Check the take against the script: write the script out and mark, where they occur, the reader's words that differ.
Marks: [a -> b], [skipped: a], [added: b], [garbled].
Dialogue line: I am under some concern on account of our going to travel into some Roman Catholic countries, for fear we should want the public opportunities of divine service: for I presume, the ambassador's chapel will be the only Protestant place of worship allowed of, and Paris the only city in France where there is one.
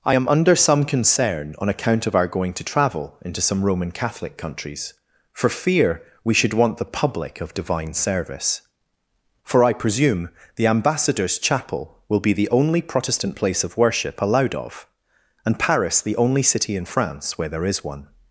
I am under some concern on account of our going to travel into some Roman Catholic countries, for fear we should want the public [skipped: opportunities] of divine service: for I presume, the ambassador's chapel will be the only Protestant place of worship allowed of, and Paris the only city in France where there is one.